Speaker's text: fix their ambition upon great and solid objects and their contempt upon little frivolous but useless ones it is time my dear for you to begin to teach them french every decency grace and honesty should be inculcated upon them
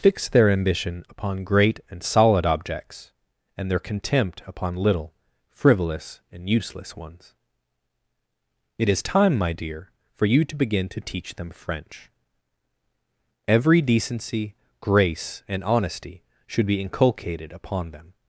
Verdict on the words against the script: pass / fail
fail